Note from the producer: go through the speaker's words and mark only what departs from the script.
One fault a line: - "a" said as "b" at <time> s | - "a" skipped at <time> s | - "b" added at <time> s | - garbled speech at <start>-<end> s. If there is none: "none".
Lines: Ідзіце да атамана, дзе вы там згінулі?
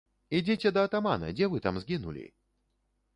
none